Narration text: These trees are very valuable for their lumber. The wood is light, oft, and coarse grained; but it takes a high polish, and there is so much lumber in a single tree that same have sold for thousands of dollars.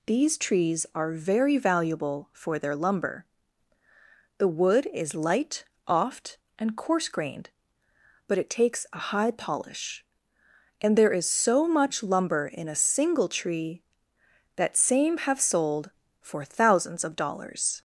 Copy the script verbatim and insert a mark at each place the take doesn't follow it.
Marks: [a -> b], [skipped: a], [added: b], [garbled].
These trees are very valuable for their lumber. The wood is light, oft, and coarse grained; but it takes a high polish, and there is so much lumber in a single tree that same have sold for thousands of dollars.